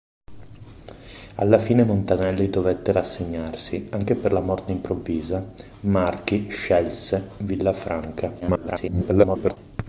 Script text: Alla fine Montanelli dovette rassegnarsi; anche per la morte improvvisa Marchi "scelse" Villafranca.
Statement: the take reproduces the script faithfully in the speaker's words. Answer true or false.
false